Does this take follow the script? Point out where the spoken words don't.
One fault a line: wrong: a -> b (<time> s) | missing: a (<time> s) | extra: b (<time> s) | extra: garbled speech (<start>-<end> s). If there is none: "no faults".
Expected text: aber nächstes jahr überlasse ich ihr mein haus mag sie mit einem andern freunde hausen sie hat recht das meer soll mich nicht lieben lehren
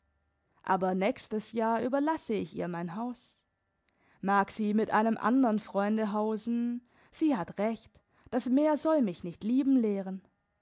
no faults